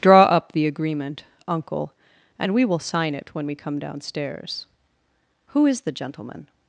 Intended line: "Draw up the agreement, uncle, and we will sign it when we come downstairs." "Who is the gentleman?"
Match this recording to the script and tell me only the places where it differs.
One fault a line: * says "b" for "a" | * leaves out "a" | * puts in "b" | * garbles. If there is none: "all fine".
all fine